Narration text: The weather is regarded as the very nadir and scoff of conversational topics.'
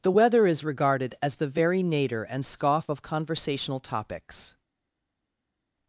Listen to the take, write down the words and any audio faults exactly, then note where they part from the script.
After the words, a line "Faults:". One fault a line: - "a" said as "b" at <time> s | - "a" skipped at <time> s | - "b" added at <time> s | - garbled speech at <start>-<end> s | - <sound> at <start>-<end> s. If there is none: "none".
The weather is regarded as the very nadir and scoff of conversational topics.'
Faults:
none